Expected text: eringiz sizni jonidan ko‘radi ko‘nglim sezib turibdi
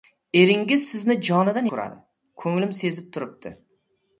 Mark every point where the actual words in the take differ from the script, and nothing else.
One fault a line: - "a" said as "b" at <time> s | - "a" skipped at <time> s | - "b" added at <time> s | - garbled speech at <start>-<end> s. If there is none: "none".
none